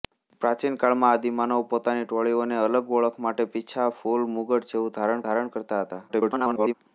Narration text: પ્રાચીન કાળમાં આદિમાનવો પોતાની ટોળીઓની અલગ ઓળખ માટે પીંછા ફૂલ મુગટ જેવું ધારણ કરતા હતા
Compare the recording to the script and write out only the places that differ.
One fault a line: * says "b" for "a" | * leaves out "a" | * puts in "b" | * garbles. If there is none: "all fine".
* puts in "ધારણ"
* garbles